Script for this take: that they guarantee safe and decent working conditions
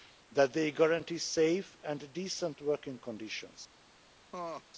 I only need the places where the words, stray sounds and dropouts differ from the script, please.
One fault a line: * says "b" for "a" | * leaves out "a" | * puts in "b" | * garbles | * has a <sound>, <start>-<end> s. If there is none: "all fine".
* has a laugh, 4.3-4.6 s